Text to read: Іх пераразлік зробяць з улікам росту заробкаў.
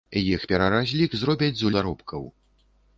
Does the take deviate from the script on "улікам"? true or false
true